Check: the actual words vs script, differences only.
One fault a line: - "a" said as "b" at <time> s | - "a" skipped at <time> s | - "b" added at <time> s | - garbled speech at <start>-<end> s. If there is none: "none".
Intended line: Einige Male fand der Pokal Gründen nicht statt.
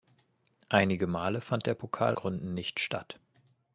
none